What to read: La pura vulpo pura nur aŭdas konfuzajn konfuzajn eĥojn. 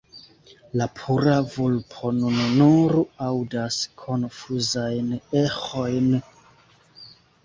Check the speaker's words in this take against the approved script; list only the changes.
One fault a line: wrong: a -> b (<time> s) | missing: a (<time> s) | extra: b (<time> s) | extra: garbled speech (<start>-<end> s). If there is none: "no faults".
wrong: pura -> nun (2.2 s)
missing: konfuzajn (5.1 s)